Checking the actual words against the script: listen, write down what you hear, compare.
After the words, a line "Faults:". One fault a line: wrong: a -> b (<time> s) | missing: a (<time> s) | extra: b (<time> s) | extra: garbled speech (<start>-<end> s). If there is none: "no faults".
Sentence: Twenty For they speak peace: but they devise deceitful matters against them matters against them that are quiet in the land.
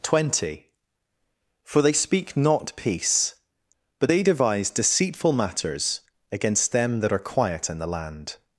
Twenty For they speak not peace: but they devise deceitful matters against them that are quiet in the land.
Faults:
extra: not (2.4 s)
missing: matters against them (7.0 s)